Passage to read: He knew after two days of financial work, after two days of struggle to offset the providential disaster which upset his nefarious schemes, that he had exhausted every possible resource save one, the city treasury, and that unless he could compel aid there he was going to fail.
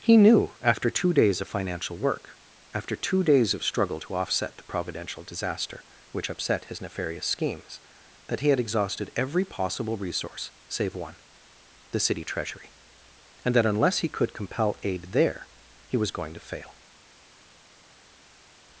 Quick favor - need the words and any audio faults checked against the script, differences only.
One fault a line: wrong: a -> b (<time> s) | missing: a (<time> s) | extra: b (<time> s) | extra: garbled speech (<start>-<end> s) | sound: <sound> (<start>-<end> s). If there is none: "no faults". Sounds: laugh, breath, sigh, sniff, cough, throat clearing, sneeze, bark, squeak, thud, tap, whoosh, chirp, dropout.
no faults